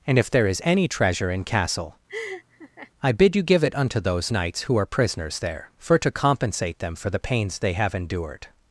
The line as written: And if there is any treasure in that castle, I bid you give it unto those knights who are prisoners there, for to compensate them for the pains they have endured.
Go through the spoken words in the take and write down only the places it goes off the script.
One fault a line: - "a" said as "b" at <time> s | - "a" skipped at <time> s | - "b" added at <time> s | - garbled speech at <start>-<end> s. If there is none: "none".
- "that" skipped at 1.4 s